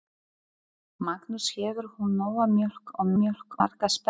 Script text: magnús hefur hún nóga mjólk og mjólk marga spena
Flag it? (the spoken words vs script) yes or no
no